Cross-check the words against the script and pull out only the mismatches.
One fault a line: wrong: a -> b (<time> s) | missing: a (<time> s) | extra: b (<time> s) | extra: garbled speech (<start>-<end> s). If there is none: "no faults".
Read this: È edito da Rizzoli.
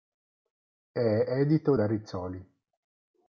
no faults